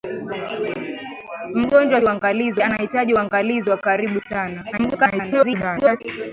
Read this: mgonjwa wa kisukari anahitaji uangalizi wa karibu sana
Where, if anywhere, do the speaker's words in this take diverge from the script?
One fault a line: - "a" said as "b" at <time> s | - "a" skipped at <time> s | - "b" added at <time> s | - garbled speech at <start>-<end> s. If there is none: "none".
- "kisukari" said as "uangalizi" at 2.0 s
- garbled speech at 4.7-6.0 s